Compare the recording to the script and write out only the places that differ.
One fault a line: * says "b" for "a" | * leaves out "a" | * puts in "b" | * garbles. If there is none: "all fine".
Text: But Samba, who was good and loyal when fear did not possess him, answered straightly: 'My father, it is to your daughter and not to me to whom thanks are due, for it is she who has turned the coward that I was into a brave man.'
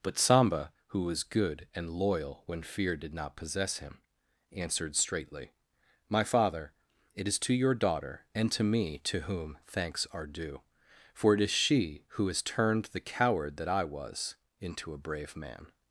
* leaves out "not"